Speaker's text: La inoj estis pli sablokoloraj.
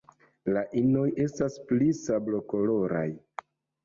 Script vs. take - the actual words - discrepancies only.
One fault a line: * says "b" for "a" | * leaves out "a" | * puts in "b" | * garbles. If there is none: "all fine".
* says "estas" for "estis"